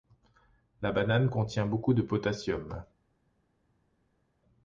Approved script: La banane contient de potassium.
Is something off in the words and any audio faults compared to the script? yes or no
yes